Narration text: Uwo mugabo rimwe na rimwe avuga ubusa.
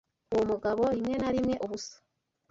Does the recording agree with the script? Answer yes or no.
no